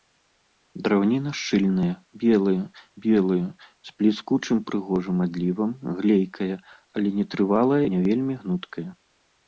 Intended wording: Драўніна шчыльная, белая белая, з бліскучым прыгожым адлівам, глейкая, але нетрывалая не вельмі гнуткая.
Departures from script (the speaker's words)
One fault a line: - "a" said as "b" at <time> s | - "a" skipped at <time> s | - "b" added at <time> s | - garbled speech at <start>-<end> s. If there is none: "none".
none